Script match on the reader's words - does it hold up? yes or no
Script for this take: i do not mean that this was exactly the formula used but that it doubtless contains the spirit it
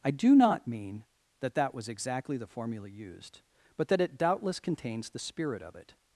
no